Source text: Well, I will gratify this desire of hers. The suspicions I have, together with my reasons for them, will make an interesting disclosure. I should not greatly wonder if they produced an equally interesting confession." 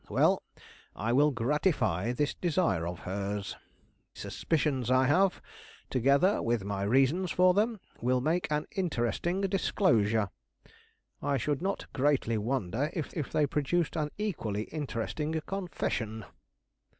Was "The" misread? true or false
true